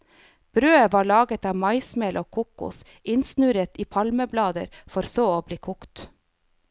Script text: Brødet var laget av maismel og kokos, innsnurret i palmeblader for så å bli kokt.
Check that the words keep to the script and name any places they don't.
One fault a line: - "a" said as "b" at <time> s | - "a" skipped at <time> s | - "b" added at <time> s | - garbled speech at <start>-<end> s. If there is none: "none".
none